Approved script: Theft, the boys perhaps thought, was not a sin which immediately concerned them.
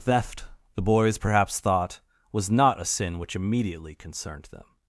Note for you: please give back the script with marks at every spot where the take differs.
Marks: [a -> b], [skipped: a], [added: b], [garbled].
Theft, the boys perhaps thought, was not a sin which immediately concerned them.